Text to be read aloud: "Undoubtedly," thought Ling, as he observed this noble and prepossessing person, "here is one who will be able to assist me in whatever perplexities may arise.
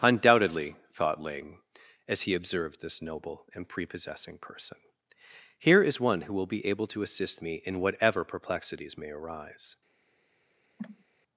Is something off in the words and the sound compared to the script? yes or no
yes